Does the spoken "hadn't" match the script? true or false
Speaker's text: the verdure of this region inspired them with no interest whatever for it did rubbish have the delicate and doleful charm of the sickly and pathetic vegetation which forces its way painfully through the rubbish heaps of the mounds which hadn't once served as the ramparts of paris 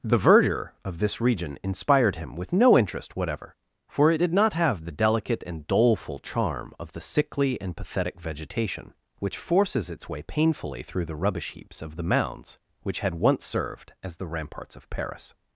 false